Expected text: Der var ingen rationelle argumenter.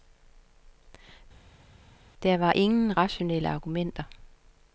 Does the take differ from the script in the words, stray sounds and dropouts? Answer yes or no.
no